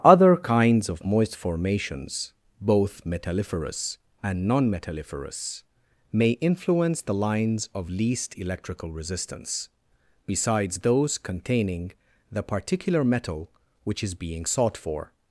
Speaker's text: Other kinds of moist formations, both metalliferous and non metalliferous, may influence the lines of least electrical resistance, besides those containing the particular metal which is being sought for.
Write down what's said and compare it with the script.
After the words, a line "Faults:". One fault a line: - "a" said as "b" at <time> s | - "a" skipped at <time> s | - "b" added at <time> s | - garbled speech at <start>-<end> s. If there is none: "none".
Other kinds of moist formations, both metalliferous and non metalliferous, may influence the lines of least electrical resistance, besides those containing the particular metal which is being sought for.
Faults:
none